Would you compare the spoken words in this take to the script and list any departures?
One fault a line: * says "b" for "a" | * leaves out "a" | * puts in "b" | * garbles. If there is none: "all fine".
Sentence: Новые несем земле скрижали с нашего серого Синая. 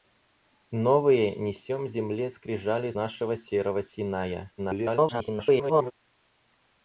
* leaves out "с"
* garbles